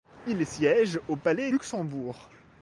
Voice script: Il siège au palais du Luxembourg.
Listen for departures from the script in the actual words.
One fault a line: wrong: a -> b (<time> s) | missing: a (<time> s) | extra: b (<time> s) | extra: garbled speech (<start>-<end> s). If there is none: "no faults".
missing: du (1.5 s)